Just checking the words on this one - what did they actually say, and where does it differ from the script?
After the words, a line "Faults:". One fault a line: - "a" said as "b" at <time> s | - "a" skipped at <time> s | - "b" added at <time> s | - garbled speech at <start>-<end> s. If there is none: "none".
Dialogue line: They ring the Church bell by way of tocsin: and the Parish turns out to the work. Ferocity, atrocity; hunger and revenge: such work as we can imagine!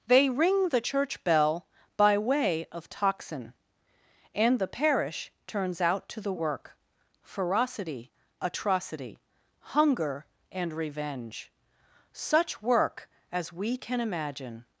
They ring the Church bell by way of tocsin: and the Parish turns out to the work. Ferocity, atrocity; hunger and revenge: such work as we can imagine!
Faults:
none